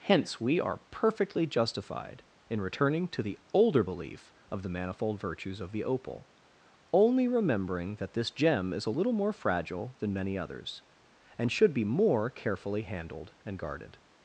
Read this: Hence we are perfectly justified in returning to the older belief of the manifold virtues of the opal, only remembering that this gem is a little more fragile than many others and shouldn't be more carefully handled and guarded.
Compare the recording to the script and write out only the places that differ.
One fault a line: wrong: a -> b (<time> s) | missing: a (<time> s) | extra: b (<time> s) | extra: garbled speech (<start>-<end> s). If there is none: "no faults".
wrong: shouldn't -> should (11.5 s)